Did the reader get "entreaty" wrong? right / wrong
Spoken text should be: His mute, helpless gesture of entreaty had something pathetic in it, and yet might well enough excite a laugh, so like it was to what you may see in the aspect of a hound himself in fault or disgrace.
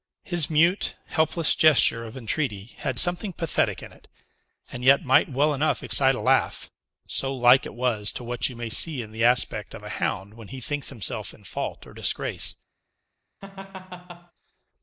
right